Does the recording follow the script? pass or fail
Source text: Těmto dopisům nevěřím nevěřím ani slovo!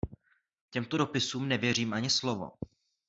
fail